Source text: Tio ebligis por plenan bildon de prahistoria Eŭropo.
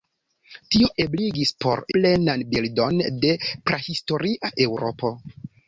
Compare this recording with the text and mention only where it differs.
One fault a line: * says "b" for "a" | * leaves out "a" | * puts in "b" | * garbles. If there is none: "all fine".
all fine